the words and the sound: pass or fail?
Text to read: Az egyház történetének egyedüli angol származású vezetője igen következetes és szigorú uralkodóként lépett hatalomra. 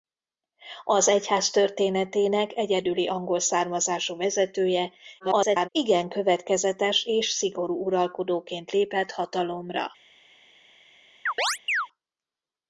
fail